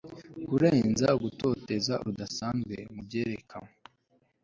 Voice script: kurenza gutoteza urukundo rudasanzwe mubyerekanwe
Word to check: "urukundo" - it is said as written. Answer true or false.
false